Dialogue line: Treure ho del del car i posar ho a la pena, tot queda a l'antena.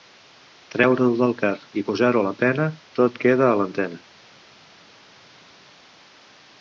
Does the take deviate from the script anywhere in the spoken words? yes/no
yes